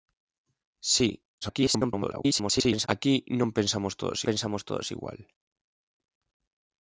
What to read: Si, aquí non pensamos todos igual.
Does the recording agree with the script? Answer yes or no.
no